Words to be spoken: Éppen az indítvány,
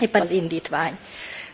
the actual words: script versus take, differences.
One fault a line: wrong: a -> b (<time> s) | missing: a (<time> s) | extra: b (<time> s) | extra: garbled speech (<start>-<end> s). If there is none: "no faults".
no faults